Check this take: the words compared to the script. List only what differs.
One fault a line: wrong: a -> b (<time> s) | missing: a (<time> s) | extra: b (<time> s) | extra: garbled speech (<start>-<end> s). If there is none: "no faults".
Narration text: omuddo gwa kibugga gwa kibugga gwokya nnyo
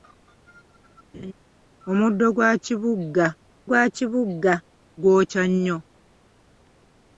no faults